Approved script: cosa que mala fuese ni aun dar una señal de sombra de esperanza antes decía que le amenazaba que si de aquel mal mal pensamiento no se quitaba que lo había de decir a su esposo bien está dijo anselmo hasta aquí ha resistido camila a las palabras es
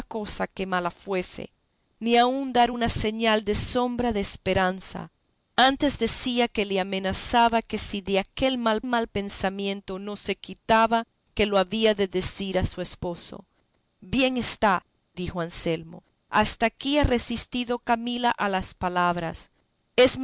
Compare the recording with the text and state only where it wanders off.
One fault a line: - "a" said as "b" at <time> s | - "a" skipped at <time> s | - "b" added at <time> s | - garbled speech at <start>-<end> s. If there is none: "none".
none